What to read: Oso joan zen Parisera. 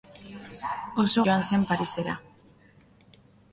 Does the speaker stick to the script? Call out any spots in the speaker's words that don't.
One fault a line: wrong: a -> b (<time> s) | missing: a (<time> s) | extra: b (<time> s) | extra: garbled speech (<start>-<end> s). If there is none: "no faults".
no faults